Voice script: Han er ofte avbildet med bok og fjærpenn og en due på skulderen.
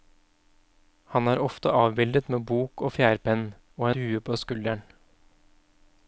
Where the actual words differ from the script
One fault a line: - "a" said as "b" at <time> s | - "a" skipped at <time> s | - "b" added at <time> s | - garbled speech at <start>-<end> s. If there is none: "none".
- "en" skipped at 3.9 s